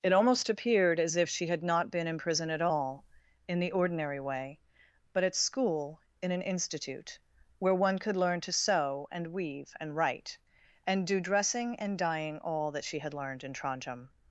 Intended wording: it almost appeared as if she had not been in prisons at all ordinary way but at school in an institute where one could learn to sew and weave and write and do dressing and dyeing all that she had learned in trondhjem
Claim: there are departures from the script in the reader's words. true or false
true